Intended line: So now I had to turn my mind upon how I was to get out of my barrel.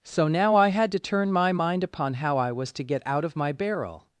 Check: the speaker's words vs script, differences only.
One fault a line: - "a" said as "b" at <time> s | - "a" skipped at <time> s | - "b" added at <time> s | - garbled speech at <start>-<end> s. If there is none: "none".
none